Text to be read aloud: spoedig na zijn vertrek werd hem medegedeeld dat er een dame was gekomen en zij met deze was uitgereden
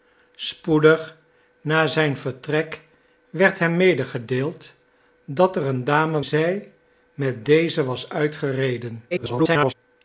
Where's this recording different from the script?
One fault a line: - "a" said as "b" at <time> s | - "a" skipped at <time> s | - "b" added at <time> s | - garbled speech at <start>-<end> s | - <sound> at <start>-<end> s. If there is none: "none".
- "was gekomen en" skipped at 6.2 s
- garbled speech at 9.1-9.7 s